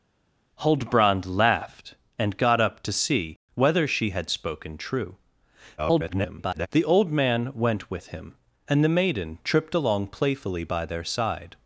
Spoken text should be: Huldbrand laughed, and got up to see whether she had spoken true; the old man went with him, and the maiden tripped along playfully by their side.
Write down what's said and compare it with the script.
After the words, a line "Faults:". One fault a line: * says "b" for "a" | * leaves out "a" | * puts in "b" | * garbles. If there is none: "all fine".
Huldbrand laughed, and got up to see whether she had spoken true; [garbled] the old man went with him, and the maiden tripped along playfully by their side.
Faults:
* garbles